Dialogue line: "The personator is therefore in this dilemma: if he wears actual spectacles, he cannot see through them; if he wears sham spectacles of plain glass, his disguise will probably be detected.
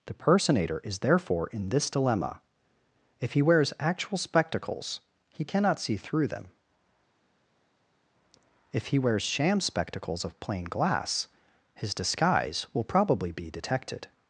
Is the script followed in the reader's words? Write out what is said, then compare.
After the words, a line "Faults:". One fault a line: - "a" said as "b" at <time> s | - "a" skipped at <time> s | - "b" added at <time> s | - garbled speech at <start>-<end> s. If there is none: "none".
"The personator is therefore in this dilemma: if he wears actual spectacles, he cannot see through them; if he wears sham spectacles of plain glass, his disguise will probably be detected.
Faults:
none